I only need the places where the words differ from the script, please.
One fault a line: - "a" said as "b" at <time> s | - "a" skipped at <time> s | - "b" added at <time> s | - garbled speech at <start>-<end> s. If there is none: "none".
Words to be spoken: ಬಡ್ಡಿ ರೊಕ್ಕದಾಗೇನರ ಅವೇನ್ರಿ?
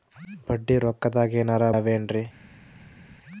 none